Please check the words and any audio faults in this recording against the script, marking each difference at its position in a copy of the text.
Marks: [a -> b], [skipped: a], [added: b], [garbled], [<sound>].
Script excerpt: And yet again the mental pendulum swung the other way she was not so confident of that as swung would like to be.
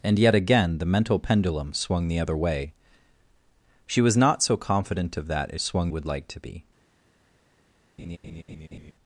And yet again the mental pendulum swung the other way she was not so confident of that as swung would like to be. [laugh]